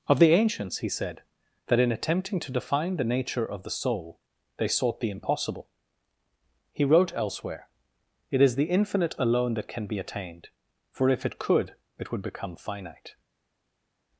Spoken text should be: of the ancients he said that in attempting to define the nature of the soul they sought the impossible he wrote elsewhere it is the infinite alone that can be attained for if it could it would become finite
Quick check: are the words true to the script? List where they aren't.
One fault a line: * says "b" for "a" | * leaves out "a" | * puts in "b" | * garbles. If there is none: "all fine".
all fine